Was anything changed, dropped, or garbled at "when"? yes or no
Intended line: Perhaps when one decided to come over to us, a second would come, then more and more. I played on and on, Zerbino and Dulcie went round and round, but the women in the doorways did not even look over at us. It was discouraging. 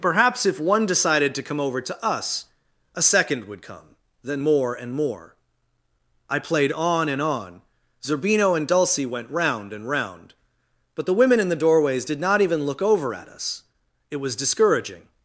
yes